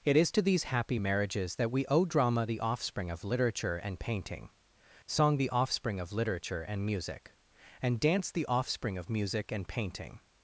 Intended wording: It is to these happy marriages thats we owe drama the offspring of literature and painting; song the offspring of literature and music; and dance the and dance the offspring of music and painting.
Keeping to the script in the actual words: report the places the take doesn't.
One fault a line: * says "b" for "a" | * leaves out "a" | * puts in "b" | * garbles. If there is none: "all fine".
* says "that" for "thats"
* leaves out "and dance the"